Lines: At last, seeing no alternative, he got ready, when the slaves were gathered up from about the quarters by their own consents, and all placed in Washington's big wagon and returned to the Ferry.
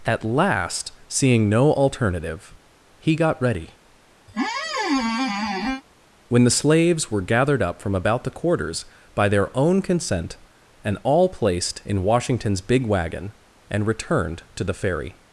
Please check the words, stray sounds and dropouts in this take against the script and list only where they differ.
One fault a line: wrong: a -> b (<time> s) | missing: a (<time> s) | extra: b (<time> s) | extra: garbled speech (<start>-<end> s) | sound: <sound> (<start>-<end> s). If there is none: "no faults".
sound: squeak (4.3-5.8 s)
wrong: consents -> consent (9.8 s)